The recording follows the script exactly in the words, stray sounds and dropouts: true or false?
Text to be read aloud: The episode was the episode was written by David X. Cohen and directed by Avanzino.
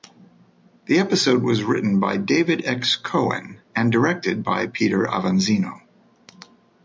false